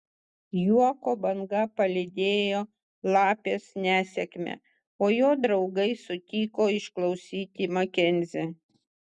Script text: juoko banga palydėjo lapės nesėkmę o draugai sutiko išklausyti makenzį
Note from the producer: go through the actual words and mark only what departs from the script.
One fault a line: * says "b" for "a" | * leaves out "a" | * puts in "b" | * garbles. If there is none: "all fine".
* puts in "jo"